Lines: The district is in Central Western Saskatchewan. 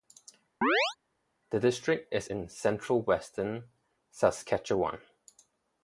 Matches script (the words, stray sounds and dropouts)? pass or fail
fail